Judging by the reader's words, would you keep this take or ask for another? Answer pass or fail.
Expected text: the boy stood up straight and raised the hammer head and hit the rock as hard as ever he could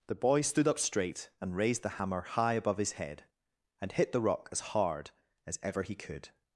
fail